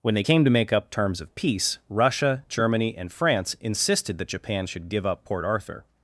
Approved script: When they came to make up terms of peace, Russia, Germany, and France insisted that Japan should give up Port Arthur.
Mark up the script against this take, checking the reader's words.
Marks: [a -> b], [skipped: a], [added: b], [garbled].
When they came to make up terms of peace, Russia, Germany, and France insisted that Japan should give up Port Arthur.